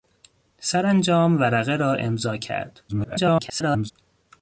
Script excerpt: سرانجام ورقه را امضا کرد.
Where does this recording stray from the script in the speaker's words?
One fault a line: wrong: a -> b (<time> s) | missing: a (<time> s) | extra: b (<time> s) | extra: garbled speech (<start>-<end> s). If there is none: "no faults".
extra: garbled speech (2.9-3.9 s)